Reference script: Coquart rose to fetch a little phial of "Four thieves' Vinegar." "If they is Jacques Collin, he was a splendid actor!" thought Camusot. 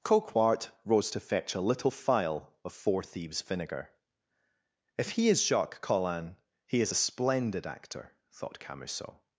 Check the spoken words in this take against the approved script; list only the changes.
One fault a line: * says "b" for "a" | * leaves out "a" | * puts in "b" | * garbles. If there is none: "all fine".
* says "he" for "they"
* says "is" for "was"